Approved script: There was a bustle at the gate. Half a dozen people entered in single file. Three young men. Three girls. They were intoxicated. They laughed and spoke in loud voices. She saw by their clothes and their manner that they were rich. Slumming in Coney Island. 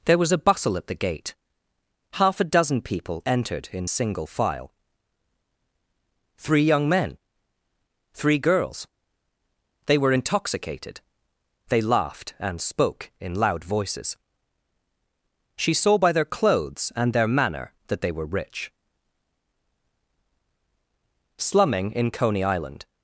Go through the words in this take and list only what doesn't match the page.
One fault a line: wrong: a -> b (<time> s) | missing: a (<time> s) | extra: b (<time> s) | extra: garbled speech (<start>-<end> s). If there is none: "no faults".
no faults